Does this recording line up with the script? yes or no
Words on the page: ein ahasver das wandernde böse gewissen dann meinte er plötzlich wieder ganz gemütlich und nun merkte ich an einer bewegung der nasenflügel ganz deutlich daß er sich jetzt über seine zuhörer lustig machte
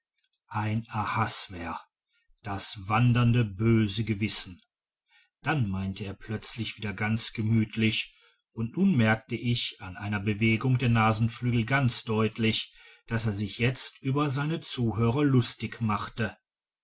yes